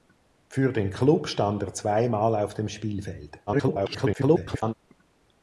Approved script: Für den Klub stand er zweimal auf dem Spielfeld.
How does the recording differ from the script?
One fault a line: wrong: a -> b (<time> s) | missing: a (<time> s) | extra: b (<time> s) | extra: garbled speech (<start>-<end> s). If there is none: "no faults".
extra: garbled speech (3.5-4.7 s)